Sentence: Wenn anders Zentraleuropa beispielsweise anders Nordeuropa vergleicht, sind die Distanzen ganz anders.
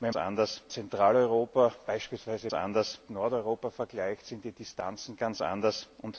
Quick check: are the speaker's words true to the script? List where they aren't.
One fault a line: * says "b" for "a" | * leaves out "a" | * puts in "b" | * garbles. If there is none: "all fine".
all fine